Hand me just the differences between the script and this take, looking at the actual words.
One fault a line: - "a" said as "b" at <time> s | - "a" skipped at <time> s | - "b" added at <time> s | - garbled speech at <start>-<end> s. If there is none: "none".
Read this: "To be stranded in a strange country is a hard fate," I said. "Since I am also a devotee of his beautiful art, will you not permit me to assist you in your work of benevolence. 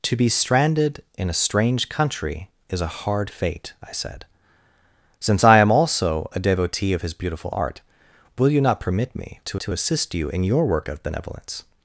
- "to" added at 9.6 s